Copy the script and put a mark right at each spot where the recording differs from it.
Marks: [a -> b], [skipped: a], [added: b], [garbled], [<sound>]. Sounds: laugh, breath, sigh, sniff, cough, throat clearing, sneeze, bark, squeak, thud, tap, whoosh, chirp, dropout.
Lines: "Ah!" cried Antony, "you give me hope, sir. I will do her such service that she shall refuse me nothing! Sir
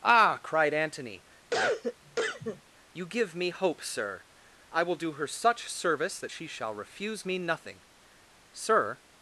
"Ah!" cried Antony, [cough] "you give me hope, sir. I will do her such service that she shall refuse me nothing! Sir